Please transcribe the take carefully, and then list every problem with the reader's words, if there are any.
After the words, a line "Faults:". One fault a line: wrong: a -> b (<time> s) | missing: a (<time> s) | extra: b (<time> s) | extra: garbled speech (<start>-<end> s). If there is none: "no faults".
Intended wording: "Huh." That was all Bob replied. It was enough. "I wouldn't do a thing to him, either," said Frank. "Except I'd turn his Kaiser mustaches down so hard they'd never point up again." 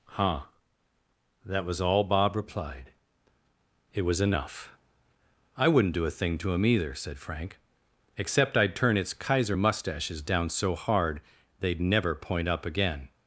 "Huh." That was all Bob replied. It was enough. "I wouldn't do a thing to him, either," said Frank. "Except I'd turn its Kaiser mustaches down so hard they'd never point up again."
Faults:
wrong: his -> its (9.0 s)